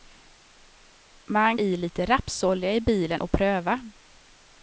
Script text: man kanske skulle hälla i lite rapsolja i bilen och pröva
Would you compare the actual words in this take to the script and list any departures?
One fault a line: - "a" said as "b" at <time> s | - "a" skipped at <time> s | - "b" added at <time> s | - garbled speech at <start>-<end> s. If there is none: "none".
- "kanske skulle hälla" skipped at 1.6 s